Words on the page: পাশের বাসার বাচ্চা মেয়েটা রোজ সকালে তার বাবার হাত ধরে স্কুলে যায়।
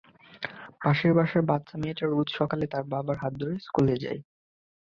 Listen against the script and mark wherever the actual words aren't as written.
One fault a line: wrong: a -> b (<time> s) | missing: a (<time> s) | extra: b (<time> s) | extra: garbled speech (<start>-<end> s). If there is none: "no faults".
no faults